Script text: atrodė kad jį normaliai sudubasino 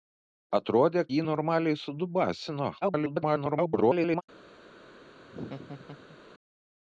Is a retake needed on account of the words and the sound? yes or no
yes